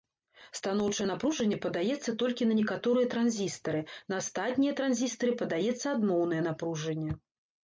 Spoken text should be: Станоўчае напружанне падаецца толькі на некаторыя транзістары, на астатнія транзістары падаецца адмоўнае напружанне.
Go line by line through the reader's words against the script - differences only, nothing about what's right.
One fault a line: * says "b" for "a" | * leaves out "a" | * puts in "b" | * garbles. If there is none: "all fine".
all fine